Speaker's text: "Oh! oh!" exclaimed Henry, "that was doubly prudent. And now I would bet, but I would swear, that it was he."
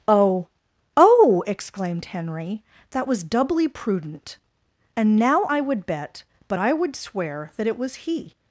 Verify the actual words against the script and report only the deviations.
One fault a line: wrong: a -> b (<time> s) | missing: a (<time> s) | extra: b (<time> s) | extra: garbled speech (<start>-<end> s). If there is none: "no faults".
no faults